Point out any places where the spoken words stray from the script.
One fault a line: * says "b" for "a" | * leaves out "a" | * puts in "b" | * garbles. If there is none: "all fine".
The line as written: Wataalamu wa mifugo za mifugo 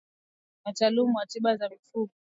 * says "tiba" for "mifugo"